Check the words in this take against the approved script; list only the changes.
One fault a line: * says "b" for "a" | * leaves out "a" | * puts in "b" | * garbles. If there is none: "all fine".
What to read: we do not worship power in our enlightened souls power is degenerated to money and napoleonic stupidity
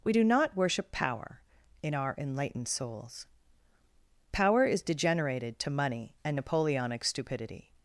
all fine